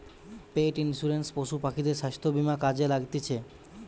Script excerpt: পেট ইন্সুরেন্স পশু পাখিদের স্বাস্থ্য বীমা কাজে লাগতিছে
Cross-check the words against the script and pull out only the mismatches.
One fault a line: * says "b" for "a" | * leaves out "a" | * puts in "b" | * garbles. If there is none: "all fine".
all fine